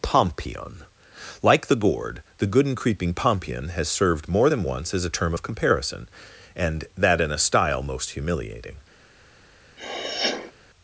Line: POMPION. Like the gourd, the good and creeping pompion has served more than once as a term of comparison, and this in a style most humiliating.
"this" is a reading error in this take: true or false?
true